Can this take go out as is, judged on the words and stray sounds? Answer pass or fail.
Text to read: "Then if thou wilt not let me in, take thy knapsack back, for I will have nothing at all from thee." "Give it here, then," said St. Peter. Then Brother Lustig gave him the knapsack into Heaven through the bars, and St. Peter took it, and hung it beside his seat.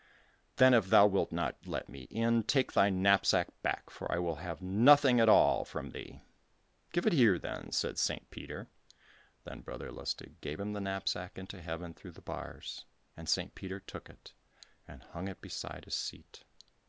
pass